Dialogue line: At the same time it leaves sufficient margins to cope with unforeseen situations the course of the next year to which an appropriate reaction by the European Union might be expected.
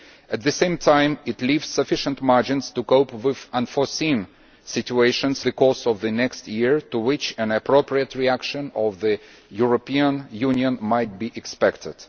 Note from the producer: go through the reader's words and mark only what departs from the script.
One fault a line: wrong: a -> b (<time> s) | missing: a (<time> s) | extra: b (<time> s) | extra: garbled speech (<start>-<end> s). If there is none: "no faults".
no faults